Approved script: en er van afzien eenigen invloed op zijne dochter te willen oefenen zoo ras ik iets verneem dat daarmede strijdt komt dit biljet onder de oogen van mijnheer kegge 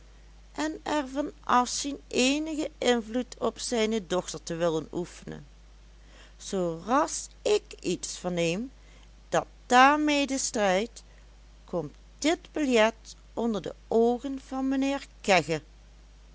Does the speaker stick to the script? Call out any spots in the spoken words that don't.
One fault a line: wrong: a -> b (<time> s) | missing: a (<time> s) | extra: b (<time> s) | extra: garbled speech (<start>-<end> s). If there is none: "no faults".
no faults